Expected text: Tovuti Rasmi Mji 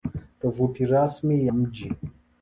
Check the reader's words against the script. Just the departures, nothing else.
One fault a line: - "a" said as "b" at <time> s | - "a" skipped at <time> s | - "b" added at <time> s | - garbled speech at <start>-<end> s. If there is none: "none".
none